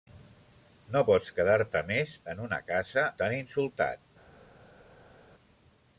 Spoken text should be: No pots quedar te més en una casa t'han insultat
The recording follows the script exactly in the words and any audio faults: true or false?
true